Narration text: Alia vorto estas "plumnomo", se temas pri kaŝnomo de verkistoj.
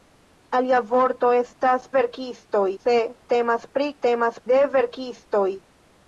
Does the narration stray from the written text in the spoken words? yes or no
yes